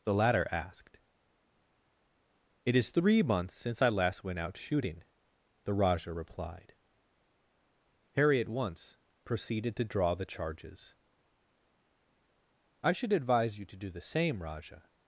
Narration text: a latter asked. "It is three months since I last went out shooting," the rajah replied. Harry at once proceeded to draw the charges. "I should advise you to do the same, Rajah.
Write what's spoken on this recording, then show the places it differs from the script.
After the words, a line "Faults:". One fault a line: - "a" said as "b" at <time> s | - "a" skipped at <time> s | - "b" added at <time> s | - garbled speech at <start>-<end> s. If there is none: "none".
the latter asked. "It is three months since I last went out shooting," the rajah replied. Harry at once proceeded to draw the charges. "I should advise you to do the same, Rajah.
Faults:
- "a" said as "the" at 0.0 s